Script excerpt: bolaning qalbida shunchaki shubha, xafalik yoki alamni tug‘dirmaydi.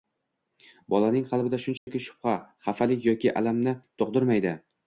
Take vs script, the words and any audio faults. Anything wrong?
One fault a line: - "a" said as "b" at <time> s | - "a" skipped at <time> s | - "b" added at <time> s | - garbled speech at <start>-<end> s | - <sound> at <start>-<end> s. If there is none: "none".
- dropout at 1.8-1.9 s